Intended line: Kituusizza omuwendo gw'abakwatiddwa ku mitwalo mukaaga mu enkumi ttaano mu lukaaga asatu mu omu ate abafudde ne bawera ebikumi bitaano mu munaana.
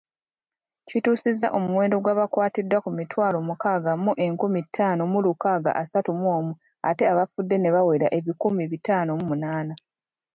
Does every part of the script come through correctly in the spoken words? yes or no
yes